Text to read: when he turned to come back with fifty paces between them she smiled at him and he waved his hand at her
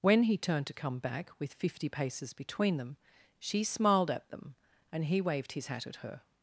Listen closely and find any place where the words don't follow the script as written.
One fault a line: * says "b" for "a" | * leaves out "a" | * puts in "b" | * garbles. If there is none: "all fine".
* says "them" for "him"
* says "hat" for "hand"